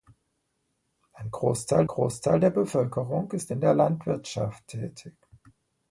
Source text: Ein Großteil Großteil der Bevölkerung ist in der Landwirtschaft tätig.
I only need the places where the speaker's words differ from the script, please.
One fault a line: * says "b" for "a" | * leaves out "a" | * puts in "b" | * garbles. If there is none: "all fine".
all fine